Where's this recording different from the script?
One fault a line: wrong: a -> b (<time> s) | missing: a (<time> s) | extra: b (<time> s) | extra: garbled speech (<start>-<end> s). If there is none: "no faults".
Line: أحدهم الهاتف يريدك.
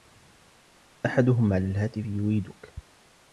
extra: على (1.5 s)